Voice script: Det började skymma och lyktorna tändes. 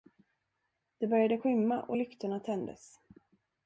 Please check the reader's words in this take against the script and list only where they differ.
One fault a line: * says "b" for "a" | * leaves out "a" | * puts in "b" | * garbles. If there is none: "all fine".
all fine